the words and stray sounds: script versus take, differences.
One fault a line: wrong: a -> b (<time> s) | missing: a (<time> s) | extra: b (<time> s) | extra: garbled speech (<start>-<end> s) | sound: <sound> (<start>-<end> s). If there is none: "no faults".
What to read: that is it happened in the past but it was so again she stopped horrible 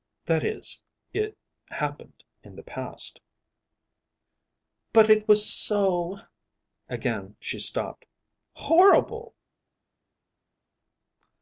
no faults